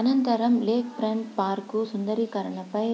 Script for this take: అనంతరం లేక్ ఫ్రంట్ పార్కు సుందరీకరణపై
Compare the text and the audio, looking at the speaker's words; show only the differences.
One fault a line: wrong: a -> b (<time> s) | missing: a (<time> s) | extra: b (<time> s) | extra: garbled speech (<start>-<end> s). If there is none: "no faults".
no faults